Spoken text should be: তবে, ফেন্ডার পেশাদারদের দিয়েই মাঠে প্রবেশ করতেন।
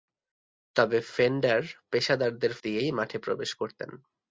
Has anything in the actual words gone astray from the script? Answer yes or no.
no